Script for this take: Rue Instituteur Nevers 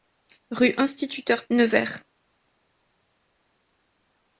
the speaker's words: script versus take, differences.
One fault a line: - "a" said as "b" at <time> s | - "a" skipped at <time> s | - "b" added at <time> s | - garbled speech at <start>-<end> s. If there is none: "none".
none